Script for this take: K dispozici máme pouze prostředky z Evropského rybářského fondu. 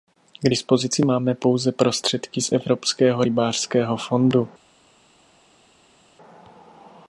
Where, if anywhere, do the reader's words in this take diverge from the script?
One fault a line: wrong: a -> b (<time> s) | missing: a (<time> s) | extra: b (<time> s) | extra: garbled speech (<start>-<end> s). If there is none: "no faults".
no faults